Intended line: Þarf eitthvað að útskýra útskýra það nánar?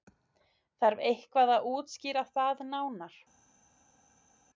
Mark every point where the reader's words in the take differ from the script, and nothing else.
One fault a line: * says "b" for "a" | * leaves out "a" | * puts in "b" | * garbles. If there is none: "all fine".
* leaves out "útskýra"